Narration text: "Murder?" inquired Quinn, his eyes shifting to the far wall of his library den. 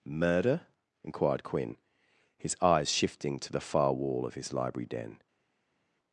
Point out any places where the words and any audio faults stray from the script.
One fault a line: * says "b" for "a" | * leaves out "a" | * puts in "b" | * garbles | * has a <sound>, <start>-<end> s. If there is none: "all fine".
all fine